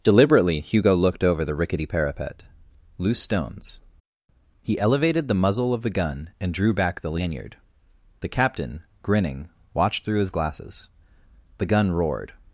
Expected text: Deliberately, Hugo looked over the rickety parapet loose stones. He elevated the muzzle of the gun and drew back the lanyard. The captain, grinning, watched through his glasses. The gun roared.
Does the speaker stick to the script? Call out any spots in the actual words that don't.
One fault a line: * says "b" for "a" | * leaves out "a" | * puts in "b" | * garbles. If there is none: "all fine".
all fine